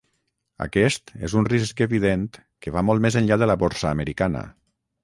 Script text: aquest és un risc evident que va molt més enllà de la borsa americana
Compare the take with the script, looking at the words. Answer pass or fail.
pass